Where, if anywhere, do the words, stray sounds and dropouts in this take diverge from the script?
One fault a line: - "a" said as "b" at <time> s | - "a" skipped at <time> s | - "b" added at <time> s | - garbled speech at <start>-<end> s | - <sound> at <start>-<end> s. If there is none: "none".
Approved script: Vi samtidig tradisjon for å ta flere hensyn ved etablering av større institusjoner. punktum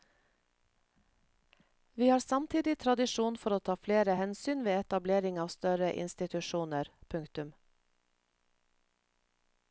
- "har" added at 2.1 s